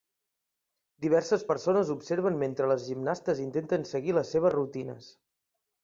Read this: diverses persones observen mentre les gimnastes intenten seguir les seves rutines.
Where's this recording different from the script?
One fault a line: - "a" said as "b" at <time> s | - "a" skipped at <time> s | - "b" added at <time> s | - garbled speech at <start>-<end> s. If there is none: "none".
none